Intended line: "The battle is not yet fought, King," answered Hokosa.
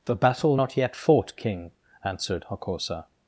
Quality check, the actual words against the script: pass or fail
fail